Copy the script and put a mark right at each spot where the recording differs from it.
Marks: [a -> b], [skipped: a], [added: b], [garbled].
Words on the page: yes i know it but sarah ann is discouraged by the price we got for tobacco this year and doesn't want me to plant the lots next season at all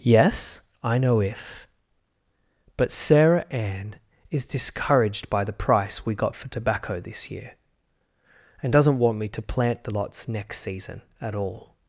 yes i know [it -> if] but sarah ann is discouraged by the price we got for tobacco this year and doesn't want me to plant the lots next season at all